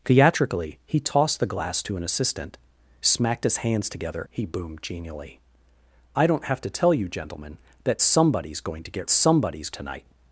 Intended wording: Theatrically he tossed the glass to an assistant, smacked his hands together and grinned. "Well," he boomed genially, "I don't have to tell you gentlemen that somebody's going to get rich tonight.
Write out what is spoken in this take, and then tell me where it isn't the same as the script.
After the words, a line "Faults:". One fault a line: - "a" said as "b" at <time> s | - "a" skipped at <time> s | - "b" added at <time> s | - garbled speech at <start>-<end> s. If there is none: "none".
Theatrically he tossed the glass to an assistant, smacked his hands together," he boomed genially, "I don't have to tell you gentlemen that somebody's going to get somebody's tonight.
Faults:
- "and grinned Well" skipped at 4.2 s
- "rich" said as "somebody's" at 9.1 s